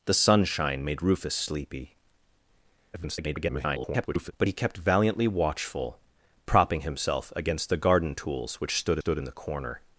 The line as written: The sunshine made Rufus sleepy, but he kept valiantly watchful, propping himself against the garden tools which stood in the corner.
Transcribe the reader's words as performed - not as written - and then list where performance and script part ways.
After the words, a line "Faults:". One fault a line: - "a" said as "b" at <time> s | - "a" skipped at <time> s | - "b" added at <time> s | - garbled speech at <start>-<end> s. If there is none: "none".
The sunshine made Rufus sleepy, [garbled] but he kept valiantly watchful, propping himself against the garden tools which stood stood in the corner.
Faults:
- garbled speech at 2.9-4.3 s
- "stood" added at 9.0 s